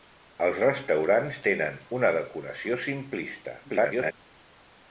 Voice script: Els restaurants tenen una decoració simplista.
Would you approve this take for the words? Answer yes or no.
no